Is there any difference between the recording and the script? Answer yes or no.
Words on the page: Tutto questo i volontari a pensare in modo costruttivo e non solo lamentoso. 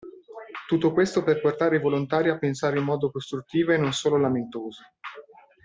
yes